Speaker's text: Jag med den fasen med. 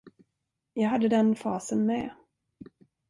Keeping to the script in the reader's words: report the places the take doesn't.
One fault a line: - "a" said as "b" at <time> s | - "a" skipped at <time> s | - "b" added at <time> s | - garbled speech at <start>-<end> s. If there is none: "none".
- "med" said as "hade" at 0.9 s